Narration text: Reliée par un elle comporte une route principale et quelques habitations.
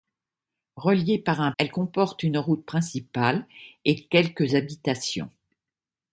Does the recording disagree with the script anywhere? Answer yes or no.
no